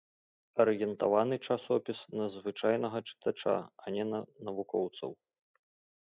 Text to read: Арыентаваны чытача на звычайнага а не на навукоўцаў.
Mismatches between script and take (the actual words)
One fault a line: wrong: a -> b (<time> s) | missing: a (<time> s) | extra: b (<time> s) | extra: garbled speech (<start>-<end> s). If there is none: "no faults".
wrong: чытача -> часопіс (1.5 s)
extra: чытача (3.1 s)